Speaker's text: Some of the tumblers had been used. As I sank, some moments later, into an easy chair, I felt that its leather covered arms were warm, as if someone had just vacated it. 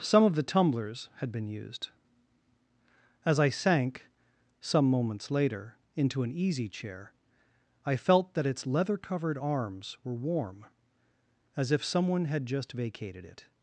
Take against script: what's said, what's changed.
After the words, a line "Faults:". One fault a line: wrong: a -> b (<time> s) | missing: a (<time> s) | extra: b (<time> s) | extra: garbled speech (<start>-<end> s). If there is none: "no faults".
Some of the tumblers had been used. As I sank, some moments later, into an easy chair, I felt that its leather covered arms were warm, as if someone had just vacated it.
Faults:
no faults